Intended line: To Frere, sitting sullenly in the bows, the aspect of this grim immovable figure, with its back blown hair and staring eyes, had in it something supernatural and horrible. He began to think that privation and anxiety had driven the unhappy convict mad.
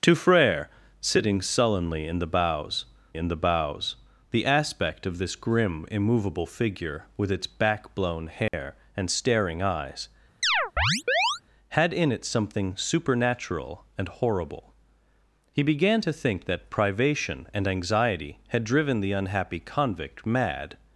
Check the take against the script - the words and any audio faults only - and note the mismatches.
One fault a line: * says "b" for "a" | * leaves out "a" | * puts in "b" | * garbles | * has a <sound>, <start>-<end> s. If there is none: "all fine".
* puts in "in the bows"
* has a dropout, 8.5-8.5 s
* has a chirp, 10.4-11.4 s